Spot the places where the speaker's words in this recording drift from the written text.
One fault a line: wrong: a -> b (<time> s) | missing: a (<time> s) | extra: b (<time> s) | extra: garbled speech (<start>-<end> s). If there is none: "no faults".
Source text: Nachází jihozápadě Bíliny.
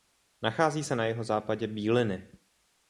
extra: se na (0.8 s)